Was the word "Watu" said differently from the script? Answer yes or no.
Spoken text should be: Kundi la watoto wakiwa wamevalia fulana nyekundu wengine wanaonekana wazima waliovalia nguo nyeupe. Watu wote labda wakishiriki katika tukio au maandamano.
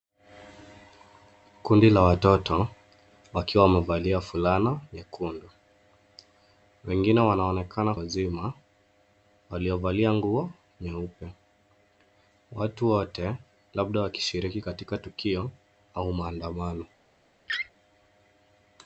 no